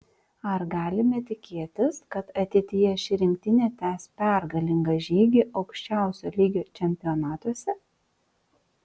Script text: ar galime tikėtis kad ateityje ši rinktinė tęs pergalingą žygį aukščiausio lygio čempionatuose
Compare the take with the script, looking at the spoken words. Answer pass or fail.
pass